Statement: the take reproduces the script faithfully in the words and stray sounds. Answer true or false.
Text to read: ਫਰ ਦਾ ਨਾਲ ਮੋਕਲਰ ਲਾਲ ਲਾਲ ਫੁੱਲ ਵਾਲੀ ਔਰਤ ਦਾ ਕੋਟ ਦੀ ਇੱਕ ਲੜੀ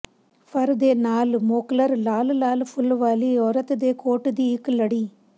false